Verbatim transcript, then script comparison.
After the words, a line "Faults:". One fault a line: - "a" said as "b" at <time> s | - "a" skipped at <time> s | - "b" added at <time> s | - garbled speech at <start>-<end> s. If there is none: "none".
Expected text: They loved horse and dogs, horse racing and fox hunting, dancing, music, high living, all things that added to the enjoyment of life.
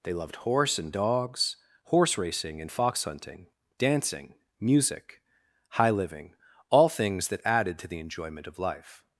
They loved horse and dogs, horse racing and fox hunting, dancing, music, high living, all things that added to the enjoyment of life.
Faults:
none